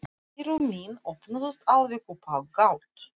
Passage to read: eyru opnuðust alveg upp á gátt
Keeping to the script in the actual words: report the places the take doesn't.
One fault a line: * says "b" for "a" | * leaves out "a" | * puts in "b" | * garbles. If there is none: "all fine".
* puts in "mín"